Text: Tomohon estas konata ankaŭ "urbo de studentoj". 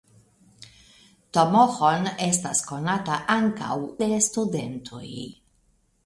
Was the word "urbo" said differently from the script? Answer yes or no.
yes